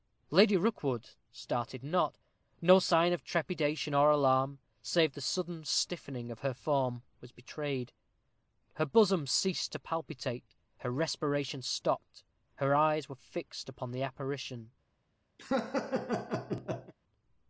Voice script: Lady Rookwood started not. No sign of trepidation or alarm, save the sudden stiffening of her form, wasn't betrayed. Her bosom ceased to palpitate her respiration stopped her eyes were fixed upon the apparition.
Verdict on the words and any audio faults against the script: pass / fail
fail